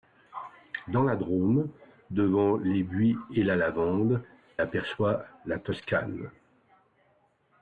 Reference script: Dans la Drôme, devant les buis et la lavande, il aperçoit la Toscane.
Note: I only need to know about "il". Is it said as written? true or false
false